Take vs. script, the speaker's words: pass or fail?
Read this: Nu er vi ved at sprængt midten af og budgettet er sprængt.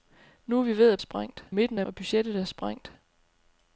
pass